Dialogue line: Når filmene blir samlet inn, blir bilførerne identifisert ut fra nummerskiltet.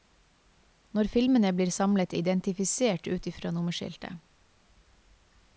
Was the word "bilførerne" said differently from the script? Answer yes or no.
yes